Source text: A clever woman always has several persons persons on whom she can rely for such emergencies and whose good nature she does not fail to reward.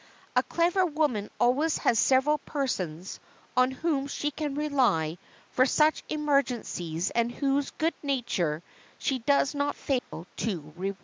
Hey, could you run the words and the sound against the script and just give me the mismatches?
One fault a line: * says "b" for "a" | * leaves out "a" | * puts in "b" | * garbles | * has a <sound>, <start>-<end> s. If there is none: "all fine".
* leaves out "persons"
* has a dropout, 10.0-10.1 s